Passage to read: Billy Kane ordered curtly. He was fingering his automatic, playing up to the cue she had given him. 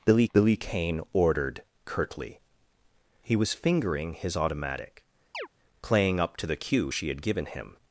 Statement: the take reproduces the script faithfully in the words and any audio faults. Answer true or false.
false